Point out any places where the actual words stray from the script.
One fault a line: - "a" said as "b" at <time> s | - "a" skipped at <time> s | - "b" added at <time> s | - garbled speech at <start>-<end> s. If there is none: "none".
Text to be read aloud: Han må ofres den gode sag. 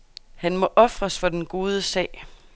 - "for" added at 1.2 s